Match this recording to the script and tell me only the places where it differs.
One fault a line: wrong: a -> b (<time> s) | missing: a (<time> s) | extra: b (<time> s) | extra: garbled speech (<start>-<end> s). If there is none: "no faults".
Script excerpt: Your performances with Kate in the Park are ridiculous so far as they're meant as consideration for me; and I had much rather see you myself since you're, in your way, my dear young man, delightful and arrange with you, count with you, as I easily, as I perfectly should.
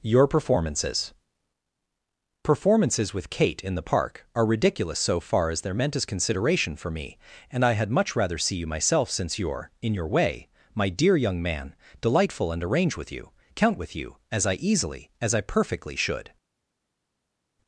extra: performances (2.4 s)